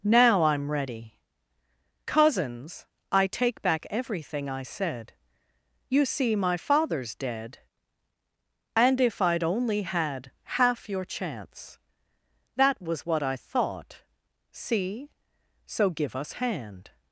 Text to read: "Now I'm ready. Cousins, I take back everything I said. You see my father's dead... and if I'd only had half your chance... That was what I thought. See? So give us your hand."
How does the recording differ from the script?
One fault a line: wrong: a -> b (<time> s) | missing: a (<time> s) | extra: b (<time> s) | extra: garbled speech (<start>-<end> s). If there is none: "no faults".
missing: your (16.3 s)